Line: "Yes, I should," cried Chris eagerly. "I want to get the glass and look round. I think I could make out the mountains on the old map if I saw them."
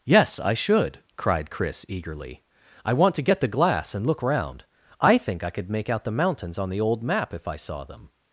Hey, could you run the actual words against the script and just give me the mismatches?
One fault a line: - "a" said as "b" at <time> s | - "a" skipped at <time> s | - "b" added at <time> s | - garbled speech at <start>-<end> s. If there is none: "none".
none